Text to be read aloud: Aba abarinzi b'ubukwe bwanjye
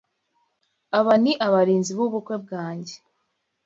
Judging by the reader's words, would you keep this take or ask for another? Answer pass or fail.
fail